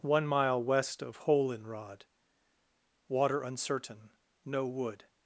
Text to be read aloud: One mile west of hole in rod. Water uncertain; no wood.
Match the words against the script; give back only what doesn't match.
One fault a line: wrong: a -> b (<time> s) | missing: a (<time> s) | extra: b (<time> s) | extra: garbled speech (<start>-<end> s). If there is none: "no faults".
no faults